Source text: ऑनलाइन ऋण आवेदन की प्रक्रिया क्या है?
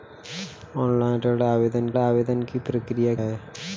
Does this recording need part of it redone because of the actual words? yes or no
yes